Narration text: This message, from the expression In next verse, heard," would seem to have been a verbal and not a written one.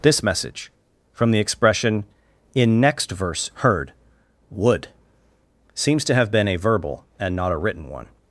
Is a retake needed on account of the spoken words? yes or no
yes